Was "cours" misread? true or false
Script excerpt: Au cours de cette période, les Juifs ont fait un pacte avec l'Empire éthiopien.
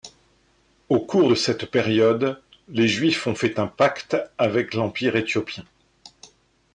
false